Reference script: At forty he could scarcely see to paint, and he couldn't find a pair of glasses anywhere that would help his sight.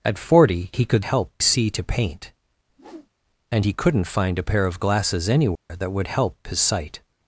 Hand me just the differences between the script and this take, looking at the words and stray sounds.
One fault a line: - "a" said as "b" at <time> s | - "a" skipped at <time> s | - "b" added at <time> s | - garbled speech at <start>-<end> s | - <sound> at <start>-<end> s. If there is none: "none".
- "scarcely" said as "help" at 1.0 s
- whoosh at 2.7-3.1 s
- dropout at 5.6-5.7 s